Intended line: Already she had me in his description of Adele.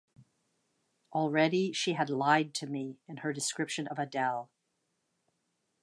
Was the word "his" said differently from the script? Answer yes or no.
yes